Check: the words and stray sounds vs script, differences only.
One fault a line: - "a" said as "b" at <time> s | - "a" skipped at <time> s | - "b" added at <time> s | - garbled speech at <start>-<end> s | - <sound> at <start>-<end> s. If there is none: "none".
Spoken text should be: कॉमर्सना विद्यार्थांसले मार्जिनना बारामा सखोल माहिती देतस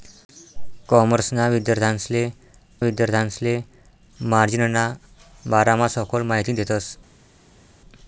- "विद्यार्थांसले" added at 2.8 s